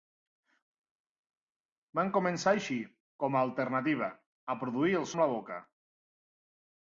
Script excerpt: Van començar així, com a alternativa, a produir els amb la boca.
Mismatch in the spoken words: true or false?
false